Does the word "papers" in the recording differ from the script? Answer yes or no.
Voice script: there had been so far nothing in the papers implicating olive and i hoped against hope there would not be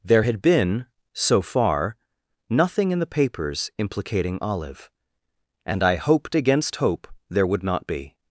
no